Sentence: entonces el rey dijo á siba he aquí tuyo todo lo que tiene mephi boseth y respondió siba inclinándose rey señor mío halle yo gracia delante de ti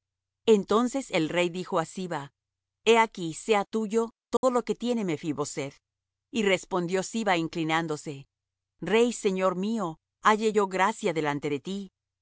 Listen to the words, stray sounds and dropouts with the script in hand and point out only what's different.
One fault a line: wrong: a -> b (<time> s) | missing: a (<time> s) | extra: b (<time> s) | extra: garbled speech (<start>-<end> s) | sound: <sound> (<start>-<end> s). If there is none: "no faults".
extra: sea (3.3 s)
sound: dropout (4.4-4.4 s)